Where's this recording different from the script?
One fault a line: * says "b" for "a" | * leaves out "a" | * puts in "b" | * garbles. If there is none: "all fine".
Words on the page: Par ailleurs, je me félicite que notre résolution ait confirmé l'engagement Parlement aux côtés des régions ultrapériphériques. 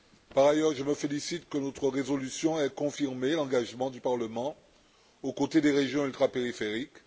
* puts in "du"